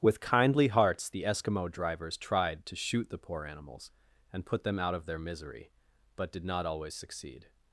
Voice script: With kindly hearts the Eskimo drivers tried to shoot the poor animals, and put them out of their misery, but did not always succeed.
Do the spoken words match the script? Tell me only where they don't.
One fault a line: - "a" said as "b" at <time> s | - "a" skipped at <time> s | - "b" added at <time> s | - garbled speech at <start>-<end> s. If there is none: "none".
none